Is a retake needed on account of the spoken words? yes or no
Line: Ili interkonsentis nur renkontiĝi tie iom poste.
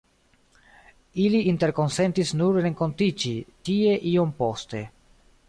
no